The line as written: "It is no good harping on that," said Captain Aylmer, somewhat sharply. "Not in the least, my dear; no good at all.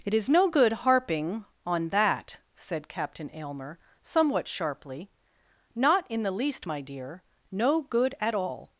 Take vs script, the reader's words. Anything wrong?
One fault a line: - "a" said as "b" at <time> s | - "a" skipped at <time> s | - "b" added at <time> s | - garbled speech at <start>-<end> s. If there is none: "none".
none